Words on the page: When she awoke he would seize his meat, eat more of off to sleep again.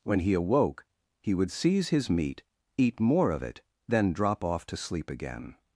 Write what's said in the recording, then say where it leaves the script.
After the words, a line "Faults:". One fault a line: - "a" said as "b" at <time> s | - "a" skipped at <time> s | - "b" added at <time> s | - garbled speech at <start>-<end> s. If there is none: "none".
When he awoke he would seize his meat, eat more of it, then drop off to sleep again.
Faults:
- "she" said as "he" at 0.2 s
- "it then drop" added at 3.4 s